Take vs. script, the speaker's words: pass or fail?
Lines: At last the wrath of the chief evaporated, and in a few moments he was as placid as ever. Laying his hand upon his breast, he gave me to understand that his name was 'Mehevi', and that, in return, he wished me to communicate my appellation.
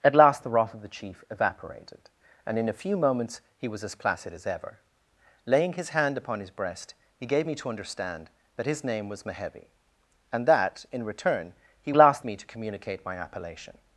fail